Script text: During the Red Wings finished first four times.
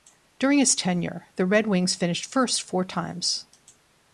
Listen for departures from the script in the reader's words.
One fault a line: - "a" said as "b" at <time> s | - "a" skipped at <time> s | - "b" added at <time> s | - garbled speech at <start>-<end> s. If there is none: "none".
- "his tenure" added at 0.6 s